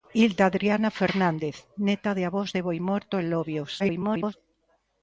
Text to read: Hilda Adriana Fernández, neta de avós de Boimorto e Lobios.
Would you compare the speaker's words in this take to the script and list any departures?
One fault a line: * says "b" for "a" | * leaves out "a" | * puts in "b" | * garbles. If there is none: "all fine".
* garbles